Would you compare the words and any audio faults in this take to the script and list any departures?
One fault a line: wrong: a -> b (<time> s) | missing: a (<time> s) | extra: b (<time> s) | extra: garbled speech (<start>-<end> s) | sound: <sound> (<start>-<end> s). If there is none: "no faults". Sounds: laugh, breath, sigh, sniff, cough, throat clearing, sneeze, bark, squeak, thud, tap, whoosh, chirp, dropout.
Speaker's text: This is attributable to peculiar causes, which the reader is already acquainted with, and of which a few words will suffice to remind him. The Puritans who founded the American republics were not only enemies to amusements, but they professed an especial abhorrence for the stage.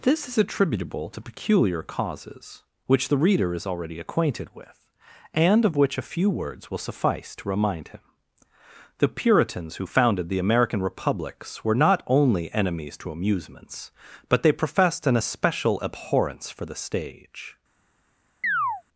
sound: chirp (18.4-18.8 s)